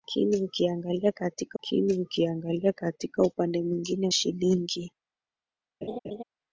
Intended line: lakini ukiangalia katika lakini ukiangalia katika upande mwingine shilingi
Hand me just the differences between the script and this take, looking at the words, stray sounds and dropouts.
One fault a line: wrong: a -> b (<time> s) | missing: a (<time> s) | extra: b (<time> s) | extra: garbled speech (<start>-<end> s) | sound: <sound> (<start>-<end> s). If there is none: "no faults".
sound: laugh (5.8-6.2 s)